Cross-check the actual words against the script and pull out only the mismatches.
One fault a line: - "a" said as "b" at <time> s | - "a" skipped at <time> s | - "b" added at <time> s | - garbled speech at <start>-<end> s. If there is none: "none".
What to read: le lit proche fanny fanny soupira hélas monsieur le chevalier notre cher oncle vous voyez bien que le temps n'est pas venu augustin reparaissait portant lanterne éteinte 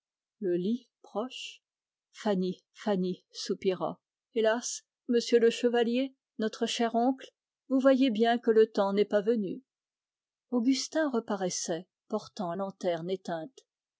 none